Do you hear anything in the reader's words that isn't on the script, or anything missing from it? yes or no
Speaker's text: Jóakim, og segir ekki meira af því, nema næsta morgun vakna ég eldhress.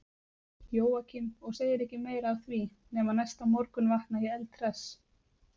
no